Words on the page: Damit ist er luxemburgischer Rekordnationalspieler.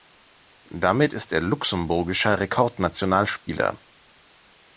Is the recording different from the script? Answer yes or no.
no